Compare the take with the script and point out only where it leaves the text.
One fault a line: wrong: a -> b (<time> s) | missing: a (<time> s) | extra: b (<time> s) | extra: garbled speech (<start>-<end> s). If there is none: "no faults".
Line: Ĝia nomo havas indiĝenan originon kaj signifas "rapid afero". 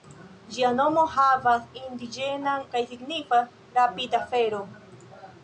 missing: originon (2.6 s)